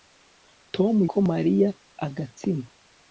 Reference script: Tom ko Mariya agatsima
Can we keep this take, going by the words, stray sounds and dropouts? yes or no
yes